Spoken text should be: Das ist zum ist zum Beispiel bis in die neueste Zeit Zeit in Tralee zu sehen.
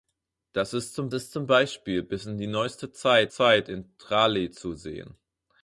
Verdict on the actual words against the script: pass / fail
pass